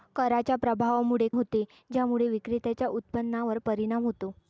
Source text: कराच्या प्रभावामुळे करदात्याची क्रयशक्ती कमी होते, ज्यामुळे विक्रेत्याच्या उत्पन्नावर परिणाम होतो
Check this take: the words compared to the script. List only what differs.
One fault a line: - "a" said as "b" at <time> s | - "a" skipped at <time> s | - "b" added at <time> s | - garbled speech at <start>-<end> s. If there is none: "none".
- "करदात्याची क्रयशक्ती कमी" skipped at 1.3 s